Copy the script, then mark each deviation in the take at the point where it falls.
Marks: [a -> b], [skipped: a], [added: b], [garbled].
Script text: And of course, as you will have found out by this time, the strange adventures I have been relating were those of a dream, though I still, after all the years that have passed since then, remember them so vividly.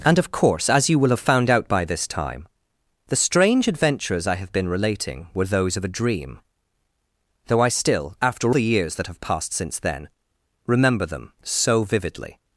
And of course, as you will have found out by this time, the strange adventures I have been relating were those of a dream, though I still, after [skipped: all] the years that have passed since then, remember them so vividly.